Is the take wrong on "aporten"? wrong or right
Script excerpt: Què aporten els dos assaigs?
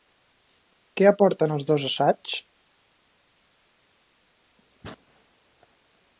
right